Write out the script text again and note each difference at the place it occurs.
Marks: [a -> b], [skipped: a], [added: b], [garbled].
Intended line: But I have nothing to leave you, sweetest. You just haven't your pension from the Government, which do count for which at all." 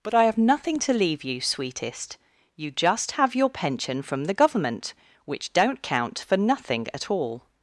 But I have nothing to leave you, sweetest. You just [haven't -> have] your pension from the Government, which [do -> don't] count for [which -> nothing] at all."